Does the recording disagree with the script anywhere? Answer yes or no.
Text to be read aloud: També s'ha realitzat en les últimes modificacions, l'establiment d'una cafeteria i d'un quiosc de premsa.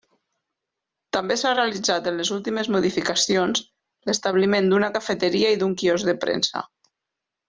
no